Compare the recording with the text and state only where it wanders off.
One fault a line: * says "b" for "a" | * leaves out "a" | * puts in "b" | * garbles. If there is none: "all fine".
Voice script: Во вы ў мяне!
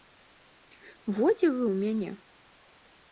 * puts in "дзе"